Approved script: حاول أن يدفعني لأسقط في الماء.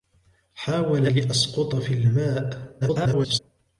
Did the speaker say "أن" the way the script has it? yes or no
no